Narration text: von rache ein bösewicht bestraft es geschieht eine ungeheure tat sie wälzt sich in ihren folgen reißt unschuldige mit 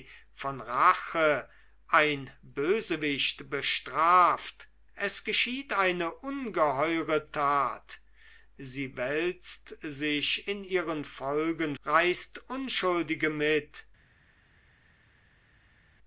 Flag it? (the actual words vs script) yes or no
no